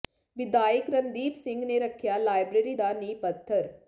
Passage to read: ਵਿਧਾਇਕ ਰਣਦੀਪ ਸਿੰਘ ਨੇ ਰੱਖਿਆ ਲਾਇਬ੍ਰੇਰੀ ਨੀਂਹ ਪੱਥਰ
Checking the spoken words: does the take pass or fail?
fail